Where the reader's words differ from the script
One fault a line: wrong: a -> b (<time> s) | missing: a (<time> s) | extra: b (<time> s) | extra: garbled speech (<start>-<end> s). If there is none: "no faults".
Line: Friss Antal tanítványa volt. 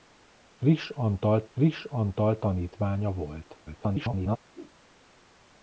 extra: friss Antal (1.5 s)
extra: garbled speech (3.7-4.4 s)